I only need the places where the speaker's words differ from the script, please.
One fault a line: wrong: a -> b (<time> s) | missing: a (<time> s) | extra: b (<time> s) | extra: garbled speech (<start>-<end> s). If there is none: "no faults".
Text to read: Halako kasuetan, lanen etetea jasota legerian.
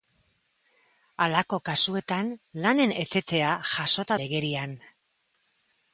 no faults